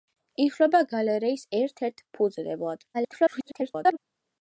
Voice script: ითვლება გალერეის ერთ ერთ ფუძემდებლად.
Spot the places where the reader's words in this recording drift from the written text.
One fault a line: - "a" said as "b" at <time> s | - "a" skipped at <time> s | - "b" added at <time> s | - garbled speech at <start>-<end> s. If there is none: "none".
- garbled speech at 2.9-4.0 s